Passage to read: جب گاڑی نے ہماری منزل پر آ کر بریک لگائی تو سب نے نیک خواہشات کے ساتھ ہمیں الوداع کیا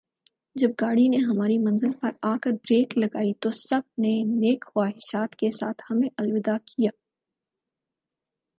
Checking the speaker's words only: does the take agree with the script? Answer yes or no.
yes